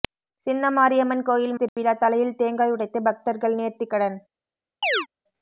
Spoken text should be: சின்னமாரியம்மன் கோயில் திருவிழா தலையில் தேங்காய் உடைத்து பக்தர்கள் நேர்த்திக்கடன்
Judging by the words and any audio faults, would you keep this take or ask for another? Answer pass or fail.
fail